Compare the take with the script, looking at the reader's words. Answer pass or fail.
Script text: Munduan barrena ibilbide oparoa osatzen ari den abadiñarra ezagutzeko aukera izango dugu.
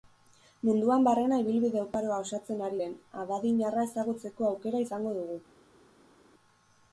pass